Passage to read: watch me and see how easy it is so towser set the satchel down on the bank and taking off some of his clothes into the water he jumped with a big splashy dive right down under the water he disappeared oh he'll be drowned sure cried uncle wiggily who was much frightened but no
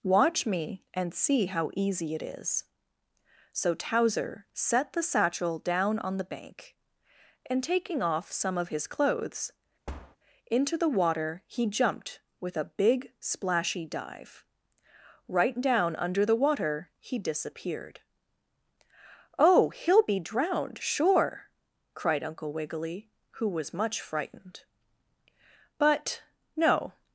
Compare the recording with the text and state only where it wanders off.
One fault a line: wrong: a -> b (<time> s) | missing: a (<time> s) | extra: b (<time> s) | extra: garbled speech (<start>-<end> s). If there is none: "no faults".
no faults